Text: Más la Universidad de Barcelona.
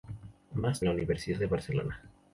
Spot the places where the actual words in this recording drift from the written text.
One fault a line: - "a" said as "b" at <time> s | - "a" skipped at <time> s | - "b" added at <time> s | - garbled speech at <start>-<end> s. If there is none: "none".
none